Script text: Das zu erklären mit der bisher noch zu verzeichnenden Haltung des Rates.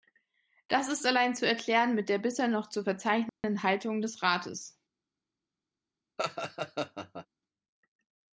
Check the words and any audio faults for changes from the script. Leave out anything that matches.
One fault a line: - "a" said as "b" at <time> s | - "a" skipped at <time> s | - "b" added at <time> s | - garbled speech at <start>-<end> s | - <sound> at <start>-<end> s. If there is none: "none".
- "ist allein" added at 0.9 s
- dropout at 3.3-3.4 s
- laugh at 6.2-7.3 s